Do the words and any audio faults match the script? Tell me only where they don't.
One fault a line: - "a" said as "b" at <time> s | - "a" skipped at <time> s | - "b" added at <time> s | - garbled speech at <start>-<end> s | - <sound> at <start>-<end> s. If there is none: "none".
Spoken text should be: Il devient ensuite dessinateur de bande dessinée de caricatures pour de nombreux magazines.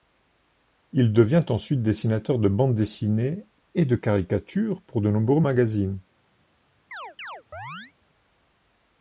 - "et" added at 3.8 s
- chirp at 6.9-7.9 s